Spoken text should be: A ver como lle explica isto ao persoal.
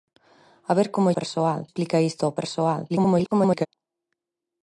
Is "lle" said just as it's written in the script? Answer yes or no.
no